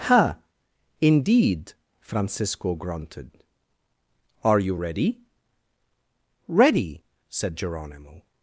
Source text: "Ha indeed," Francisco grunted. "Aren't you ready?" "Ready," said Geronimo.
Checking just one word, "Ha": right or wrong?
right